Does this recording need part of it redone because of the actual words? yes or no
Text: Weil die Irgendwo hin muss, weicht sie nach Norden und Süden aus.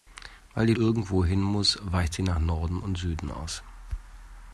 no